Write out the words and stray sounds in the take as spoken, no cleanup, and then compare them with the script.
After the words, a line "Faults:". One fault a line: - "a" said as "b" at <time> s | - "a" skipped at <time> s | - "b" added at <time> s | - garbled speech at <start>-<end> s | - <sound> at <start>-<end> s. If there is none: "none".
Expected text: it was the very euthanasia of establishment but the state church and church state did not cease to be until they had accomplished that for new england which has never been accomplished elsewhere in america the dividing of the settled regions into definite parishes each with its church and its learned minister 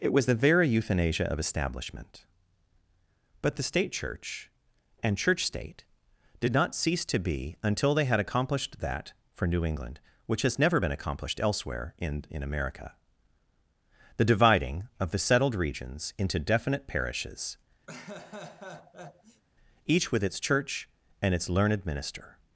it was the very euthanasia of establishment but the state church and church state did not cease to be until they had accomplished that for new england which has never been accomplished elsewhere in in america the dividing of the settled regions into definite parishes each with its church and its learned minister
Faults:
- "in" added at 12.3 s
- laugh at 17.9-19.4 s